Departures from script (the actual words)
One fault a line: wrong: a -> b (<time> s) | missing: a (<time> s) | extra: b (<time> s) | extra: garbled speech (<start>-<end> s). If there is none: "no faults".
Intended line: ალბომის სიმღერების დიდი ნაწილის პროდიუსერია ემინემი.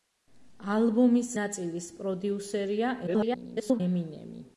missing: სიმღერების დიდი (1.3 s)
extra: garbled speech (3.1-3.8 s)